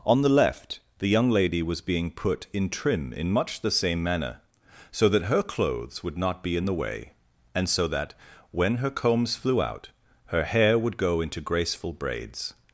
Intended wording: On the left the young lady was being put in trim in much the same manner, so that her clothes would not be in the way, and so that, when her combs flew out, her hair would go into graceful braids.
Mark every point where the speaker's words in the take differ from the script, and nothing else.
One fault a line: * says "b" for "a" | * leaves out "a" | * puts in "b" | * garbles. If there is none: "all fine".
all fine